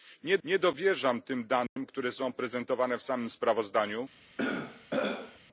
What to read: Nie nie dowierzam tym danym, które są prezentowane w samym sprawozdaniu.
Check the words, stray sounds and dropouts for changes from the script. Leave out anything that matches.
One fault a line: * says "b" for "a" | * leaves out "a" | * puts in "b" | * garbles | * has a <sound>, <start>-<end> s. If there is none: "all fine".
* has a dropout, 1.7-1.8 s
* has a throat clearing, 4.4-5.4 s